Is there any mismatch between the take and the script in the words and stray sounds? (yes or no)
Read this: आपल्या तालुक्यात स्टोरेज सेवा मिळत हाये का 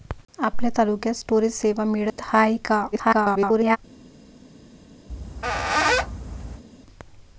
yes